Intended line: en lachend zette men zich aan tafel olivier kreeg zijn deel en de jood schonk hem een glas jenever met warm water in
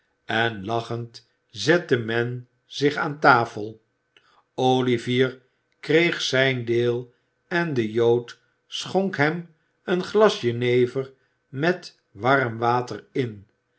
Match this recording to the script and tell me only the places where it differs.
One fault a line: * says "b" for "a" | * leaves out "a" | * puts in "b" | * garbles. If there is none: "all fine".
all fine